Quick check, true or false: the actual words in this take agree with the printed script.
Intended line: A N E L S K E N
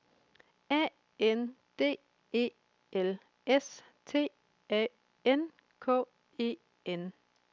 false